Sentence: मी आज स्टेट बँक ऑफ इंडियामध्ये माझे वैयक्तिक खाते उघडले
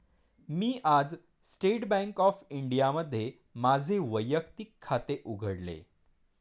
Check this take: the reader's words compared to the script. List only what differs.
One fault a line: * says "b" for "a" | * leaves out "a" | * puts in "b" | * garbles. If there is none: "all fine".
all fine